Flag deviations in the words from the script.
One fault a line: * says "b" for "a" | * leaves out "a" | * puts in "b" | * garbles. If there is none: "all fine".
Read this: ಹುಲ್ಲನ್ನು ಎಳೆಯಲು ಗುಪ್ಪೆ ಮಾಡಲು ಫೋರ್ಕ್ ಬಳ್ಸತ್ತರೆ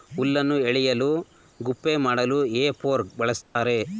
* puts in "ಹೇ"